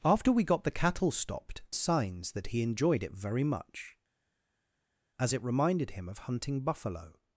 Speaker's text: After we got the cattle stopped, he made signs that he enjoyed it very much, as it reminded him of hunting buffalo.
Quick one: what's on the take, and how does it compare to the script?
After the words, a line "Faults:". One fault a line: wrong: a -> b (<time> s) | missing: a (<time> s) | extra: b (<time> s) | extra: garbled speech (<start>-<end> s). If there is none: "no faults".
After we got the cattle stopped, signs that he enjoyed it very much, as it reminded him of hunting buffalo.
Faults:
missing: he made (1.6 s)